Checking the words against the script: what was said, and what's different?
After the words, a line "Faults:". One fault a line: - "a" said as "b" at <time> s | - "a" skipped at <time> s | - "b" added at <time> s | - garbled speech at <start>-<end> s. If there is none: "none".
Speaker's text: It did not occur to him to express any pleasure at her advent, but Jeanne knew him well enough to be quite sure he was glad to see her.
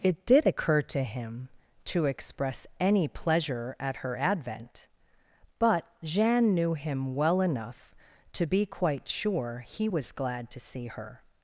It did occur to him to express any pleasure at her advent, but Jeanne knew him well enough to be quite sure he was glad to see her.
Faults:
- "not" skipped at 0.5 s